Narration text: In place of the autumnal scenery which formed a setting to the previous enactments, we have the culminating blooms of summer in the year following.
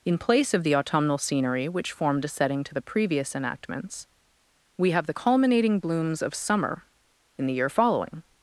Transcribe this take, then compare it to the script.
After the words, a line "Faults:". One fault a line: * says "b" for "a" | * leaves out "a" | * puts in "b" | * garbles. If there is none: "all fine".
In place of the autumnal scenery which formed a setting to the previous enactments, we have the culminating blooms of summer in the year following.
Faults:
all fine